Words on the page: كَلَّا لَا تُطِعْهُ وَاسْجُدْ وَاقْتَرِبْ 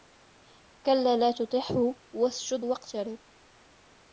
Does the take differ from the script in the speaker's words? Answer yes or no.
no